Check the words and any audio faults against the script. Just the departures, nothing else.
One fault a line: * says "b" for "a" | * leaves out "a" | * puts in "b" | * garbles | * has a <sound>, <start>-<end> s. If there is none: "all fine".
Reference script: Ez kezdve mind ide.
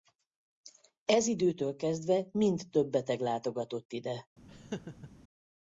* puts in "időtől"
* puts in "több beteg látogatott"
* has a laugh, 4.5-5.1 s